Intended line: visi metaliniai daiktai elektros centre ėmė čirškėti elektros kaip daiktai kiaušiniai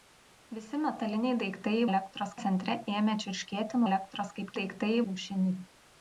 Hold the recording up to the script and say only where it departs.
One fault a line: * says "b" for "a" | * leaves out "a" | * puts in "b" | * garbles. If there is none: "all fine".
all fine